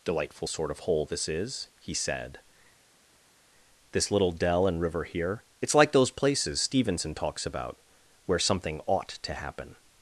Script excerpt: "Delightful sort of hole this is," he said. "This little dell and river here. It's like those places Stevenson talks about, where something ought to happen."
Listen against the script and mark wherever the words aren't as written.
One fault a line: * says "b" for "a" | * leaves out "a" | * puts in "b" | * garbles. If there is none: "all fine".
all fine